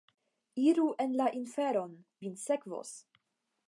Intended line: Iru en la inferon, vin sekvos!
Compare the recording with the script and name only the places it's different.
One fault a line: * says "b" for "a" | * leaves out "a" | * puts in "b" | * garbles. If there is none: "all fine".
all fine